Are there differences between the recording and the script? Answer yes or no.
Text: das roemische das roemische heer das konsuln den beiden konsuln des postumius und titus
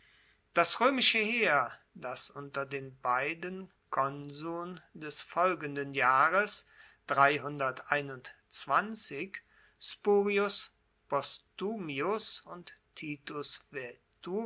yes